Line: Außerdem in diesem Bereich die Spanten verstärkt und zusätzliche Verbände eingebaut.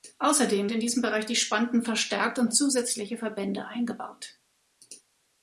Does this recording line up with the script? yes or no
yes